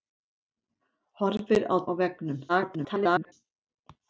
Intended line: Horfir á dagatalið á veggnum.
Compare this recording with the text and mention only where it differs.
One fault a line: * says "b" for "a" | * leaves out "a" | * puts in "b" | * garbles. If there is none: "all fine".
* leaves out "dagatalið"
* garbles